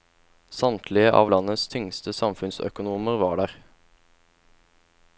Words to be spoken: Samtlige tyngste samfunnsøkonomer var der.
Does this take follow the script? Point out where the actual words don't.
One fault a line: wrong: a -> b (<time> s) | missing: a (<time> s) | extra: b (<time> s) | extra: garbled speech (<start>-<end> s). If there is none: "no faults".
extra: av landets (1.1 s)